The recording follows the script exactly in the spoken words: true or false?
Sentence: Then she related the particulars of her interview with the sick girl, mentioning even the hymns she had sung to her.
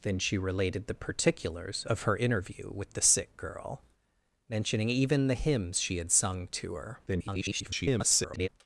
false